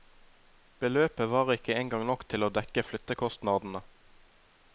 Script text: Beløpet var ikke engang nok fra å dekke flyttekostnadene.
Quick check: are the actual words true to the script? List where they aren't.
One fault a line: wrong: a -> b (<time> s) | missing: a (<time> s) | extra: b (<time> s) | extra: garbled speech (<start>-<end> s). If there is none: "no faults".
wrong: fra -> til (2.3 s)